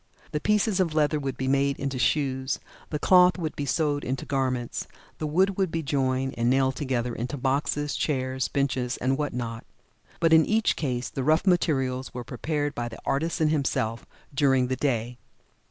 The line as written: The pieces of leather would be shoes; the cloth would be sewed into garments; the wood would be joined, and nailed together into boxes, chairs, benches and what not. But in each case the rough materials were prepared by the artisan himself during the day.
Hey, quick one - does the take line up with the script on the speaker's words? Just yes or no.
no